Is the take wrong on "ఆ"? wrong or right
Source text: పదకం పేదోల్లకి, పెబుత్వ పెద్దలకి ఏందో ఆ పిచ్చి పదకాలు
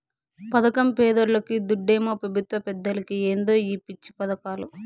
wrong